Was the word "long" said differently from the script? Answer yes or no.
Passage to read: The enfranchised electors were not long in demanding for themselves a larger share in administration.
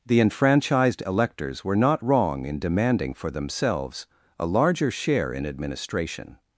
yes